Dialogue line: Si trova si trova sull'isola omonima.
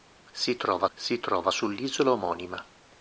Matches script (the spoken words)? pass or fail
pass